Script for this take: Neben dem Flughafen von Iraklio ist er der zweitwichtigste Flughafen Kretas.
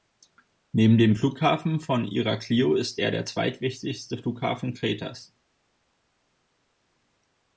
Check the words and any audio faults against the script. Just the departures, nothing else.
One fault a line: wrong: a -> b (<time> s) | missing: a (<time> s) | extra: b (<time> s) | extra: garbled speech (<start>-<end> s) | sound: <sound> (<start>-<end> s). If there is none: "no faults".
no faults